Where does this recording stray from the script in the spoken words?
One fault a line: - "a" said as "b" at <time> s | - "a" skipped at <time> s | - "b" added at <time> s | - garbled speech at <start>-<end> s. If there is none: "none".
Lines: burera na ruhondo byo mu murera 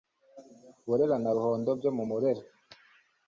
none